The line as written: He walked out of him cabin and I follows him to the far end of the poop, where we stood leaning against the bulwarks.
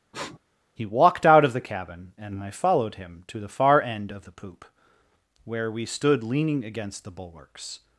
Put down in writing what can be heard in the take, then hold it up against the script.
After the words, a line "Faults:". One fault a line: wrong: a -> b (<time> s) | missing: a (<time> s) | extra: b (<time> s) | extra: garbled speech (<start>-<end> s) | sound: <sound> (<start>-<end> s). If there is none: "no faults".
He walked out of the cabin and I followed him to the far end of the poop, where we stood leaning against the bulwarks.
Faults:
sound: sniff (0.1-0.4 s)
wrong: him -> the (1.5 s)
wrong: follows -> followed (2.5 s)